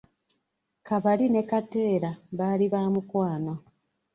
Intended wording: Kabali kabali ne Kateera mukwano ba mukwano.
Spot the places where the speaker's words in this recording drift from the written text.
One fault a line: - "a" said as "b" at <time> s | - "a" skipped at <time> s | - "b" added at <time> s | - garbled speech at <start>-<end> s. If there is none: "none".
- "kabali" skipped at 1.2 s
- "mukwano" said as "baali" at 2.4 s